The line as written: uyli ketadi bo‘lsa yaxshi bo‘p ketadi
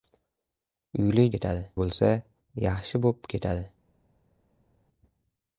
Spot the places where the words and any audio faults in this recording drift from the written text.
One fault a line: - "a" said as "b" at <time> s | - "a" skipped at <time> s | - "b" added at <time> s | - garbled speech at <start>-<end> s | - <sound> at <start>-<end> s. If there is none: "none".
none